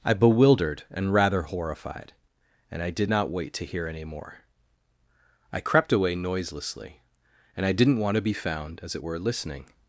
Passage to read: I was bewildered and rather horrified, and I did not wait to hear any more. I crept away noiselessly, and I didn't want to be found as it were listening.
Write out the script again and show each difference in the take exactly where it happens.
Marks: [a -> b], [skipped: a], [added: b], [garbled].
I [skipped: was] bewildered and rather horrified, and I did not wait to hear any more. I crept away noiselessly, and I didn't want to be found as it were listening.